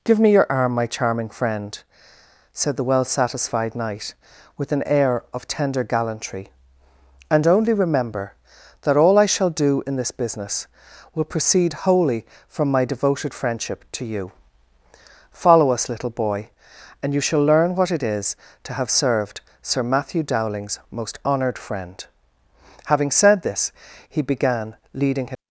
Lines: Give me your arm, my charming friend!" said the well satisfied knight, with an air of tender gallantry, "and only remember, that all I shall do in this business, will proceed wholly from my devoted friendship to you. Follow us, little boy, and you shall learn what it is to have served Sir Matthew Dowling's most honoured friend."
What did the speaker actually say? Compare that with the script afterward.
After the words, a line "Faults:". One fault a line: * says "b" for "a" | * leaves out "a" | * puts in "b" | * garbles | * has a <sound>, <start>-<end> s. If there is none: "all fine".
Give me your arm, my charming friend!" said the well satisfied knight, with an air of tender gallantry, "and only remember, that all I shall do in this business, will proceed wholly from my devoted friendship to you. Follow us, little boy, and you shall learn what it is to have served Sir Matthew Dowling's most honoured friend." Having said this, he began leading his
Faults:
* puts in "Having said this he began leading his"